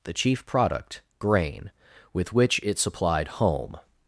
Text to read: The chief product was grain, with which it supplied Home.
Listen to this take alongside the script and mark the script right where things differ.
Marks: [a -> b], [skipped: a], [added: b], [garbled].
The chief product [skipped: was] grain, with which it supplied Home.